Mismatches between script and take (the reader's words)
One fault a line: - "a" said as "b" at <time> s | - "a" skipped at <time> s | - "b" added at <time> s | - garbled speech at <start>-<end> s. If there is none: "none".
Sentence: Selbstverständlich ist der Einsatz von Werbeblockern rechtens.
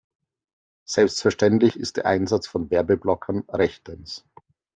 none